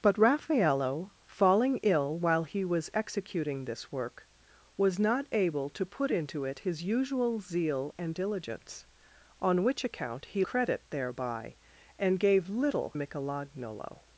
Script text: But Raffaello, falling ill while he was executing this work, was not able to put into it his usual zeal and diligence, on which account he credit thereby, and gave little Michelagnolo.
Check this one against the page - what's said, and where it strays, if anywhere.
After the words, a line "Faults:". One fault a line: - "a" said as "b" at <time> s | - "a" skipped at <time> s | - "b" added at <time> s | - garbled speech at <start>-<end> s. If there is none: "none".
But Raffaello, falling ill while he was executing this work, was not able to put into it his usual zeal and diligence, on which account he credit thereby, and gave little Michelagnolo.
Faults:
none